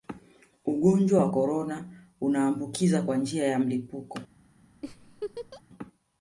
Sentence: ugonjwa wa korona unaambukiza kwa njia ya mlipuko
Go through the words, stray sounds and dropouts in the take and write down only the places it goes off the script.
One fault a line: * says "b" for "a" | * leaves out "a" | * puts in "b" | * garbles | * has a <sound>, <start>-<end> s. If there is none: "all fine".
* has a laugh, 4.8-5.6 s